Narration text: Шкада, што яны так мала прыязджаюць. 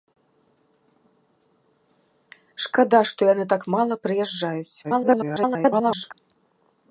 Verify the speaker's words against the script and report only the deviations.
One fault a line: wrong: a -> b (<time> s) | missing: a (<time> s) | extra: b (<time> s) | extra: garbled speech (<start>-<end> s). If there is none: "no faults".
extra: garbled speech (4.8-6.1 s)